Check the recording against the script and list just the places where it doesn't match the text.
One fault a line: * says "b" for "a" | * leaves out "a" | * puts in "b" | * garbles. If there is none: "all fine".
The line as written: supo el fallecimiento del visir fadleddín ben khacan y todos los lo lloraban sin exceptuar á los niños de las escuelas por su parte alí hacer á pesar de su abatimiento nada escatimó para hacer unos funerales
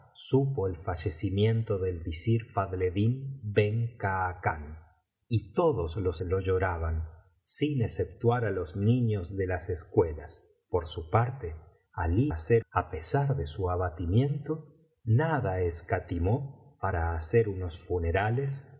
all fine